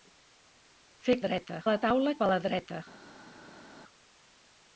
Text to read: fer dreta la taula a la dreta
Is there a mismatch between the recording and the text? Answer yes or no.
no